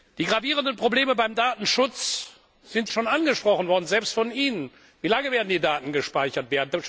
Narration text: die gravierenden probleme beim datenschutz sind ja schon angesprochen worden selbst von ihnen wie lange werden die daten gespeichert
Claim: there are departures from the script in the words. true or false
true